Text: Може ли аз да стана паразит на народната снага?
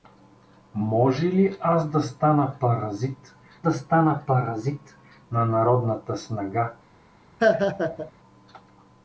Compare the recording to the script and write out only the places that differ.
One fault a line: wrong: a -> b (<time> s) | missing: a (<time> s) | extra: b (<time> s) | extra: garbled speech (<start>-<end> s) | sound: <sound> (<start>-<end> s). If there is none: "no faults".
extra: да стана паразит (3.6 s)
sound: laugh (7.4-8.1 s)